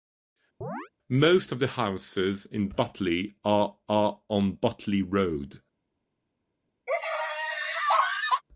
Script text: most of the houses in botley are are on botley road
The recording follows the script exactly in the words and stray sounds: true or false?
false